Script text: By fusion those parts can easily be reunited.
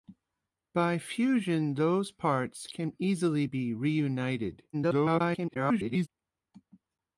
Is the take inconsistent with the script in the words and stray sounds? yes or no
yes